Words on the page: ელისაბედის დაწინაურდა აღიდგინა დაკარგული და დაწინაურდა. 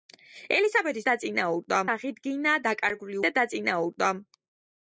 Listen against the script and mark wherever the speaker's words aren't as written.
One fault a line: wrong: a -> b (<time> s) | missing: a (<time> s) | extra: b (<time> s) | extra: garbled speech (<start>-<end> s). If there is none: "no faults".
no faults